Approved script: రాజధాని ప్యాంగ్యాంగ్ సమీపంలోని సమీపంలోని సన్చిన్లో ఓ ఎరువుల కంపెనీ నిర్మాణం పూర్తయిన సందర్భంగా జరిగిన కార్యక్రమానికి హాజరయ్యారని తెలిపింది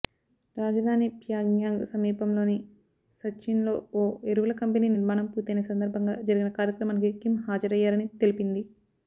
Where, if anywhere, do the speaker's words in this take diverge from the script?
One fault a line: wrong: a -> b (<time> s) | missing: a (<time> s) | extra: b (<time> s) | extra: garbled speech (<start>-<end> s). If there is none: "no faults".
missing: సమీపంలోని (2.5 s)
extra: కిమ్ (7.2 s)